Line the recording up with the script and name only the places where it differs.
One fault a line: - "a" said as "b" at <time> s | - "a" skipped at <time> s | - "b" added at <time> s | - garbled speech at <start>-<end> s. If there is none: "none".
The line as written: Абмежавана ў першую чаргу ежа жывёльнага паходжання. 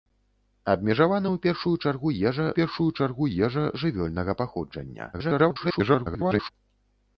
- "першую чаргу ежа" added at 2.6 s
- garbled speech at 5.1-6.5 s